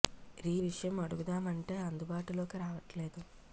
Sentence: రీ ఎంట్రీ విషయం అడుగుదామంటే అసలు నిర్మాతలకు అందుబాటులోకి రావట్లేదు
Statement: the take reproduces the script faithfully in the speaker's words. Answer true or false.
false